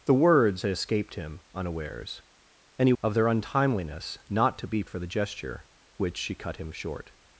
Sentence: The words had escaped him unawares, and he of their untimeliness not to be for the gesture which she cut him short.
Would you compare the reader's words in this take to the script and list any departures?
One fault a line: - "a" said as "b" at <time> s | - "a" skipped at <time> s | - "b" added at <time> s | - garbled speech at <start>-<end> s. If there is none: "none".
none